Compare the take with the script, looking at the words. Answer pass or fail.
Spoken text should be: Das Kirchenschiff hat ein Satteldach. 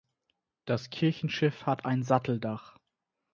pass